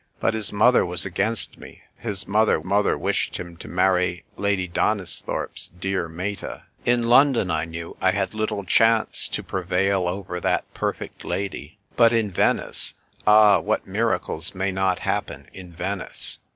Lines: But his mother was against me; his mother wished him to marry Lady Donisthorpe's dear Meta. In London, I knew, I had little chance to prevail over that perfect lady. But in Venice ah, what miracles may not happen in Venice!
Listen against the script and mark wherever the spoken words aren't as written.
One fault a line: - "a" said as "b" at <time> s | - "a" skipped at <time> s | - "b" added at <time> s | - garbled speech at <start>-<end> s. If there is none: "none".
- "mother" added at 2.6 s